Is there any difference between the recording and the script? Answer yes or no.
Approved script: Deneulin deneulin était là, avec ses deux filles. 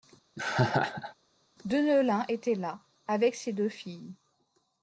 yes